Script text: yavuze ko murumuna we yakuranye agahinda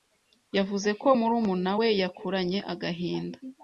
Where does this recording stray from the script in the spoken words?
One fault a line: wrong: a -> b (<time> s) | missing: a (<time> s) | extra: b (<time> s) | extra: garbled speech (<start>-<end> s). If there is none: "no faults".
no faults